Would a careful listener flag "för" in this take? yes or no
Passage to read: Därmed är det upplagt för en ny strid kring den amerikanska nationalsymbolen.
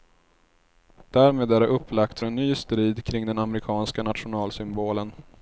yes